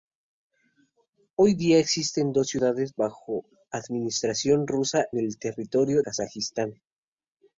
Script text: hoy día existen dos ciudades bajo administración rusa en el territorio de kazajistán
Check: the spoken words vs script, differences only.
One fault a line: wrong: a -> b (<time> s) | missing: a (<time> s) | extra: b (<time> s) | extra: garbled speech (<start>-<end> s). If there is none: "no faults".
missing: en (5.0 s)
missing: de (6.0 s)